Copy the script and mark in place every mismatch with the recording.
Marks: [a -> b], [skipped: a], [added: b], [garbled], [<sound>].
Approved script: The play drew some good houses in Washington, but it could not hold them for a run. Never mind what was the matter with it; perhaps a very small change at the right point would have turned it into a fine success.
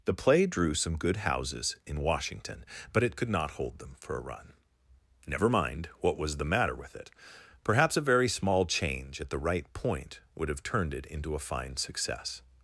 The play drew some good houses in Washington, but it could not hold them for a run. Never mind what was the matter with it; perhaps a very small change at the right point would have turned it into a fine success.